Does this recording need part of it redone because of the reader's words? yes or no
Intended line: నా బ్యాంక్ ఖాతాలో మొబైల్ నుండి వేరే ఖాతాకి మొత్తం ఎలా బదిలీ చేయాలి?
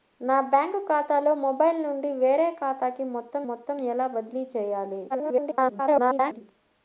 yes